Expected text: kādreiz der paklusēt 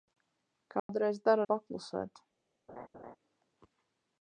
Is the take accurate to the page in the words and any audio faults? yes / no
no